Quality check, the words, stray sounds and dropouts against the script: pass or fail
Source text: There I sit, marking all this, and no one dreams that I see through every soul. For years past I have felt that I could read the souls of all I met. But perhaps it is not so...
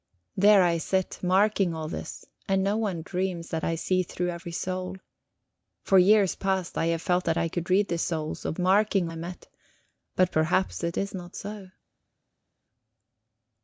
fail